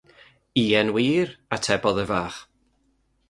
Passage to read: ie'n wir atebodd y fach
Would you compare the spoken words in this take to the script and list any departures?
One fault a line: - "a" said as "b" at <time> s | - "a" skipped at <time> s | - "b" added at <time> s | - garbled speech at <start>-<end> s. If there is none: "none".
none